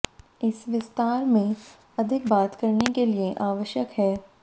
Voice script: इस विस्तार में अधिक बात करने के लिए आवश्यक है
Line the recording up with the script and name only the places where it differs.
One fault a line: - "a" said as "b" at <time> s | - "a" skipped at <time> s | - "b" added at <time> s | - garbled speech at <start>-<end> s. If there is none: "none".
none